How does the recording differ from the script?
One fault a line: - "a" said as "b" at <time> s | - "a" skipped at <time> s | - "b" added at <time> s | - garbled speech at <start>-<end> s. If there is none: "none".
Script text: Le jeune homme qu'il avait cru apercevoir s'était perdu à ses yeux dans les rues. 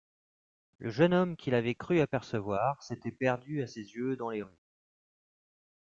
none